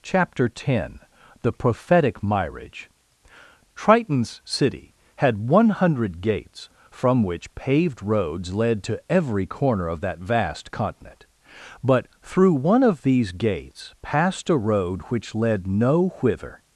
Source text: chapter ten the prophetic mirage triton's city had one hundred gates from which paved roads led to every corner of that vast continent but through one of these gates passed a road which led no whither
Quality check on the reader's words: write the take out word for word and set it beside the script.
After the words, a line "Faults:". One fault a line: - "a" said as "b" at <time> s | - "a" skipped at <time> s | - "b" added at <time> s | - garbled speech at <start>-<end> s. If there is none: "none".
chapter ten the prophetic mirage triton's city had one hundred gates from which paved roads led to every corner of that vast continent but through one of these gates passed a road which led no whither
Faults:
none